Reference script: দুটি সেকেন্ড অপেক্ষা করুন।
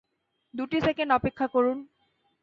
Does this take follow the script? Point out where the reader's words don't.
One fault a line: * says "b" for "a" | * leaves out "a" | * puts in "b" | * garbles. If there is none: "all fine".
all fine